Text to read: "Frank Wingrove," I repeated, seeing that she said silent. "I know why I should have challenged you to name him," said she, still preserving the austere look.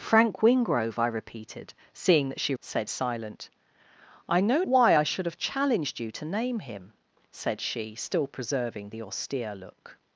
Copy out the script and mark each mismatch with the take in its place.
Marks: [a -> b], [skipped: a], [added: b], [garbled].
"Frank Wingrove," I repeated, seeing that she said silent. "I know why I should have challenged you to name him," said she, still preserving the austere look.